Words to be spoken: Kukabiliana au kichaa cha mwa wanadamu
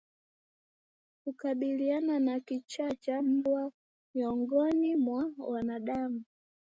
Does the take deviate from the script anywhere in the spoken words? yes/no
yes